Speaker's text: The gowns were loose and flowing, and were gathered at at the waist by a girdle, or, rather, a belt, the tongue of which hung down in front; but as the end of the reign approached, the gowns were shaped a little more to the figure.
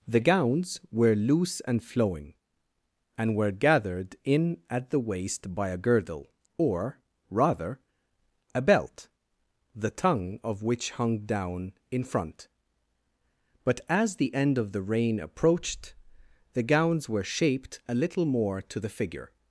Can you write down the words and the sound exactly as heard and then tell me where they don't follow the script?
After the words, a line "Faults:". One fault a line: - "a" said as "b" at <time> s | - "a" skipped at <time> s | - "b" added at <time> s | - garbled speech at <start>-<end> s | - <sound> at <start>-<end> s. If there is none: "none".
The gowns were loose and flowing, and were gathered in at the waist by a girdle, or, rather, a belt, the tongue of which hung down in front; but as the end of the reign approached, the gowns were shaped a little more to the figure.
Faults:
- "at" said as "in" at 4.2 s